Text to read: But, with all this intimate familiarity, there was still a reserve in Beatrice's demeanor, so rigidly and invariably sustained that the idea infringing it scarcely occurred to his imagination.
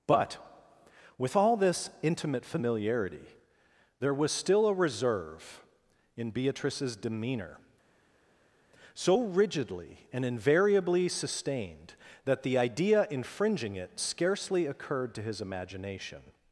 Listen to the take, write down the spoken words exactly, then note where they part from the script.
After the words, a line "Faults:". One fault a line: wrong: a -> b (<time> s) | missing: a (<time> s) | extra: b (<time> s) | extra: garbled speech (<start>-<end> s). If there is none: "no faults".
But, with all this intimate familiarity, there was still a reserve in Beatrice's demeanor, so rigidly and invariably sustained that the idea infringing it scarcely occurred to his imagination.
Faults:
no faults